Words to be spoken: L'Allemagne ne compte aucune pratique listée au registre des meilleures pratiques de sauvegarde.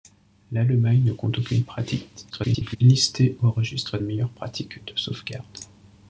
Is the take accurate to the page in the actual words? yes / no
no